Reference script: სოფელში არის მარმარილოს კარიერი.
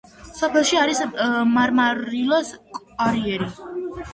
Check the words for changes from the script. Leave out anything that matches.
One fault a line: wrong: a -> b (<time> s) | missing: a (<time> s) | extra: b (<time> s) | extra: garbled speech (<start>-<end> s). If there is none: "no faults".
no faults